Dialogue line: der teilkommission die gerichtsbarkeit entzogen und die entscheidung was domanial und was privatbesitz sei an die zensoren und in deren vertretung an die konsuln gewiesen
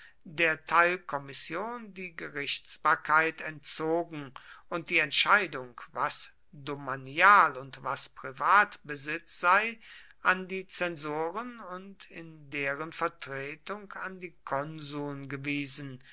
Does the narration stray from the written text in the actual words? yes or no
no